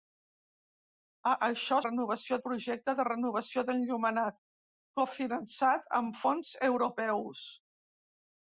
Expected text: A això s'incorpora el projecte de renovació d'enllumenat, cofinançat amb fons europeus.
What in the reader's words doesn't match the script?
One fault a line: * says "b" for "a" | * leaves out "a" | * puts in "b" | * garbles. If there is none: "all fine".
* says "renovació" for "s'incorpora"